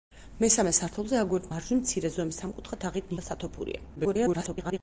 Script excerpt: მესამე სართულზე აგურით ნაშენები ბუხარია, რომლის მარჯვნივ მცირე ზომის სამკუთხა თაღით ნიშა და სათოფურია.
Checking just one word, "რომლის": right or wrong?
wrong